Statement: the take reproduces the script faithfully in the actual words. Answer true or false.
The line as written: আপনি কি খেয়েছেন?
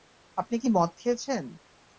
false